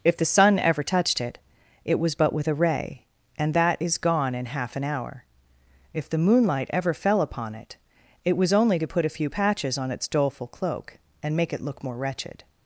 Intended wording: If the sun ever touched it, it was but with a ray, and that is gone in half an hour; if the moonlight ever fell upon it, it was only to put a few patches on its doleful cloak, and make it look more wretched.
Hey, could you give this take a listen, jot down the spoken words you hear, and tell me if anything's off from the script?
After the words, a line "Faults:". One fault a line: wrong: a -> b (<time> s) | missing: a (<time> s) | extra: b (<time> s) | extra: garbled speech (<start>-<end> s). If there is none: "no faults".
If the sun ever touched it, it was but with a ray, and that is gone in half an hour; if the moonlight ever fell upon it, it was only to put a few patches on its doleful cloak, and make it look more wretched.
Faults:
no faults